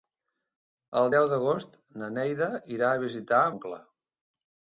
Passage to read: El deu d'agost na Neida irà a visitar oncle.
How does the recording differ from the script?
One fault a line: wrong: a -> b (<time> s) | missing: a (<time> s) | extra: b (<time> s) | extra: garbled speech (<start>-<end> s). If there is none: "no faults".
no faults